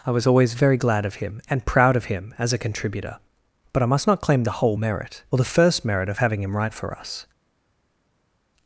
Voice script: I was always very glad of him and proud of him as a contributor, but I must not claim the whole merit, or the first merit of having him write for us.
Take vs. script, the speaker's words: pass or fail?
pass